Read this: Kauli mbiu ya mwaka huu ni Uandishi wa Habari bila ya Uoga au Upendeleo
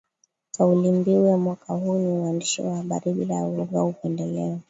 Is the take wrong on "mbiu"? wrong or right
right